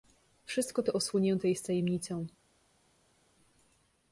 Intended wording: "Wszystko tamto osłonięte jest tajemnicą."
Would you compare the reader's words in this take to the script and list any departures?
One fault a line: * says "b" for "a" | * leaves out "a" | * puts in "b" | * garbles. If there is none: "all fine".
* says "to" for "tamto"